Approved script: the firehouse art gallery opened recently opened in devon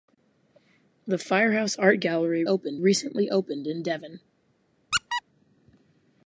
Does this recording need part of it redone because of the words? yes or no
no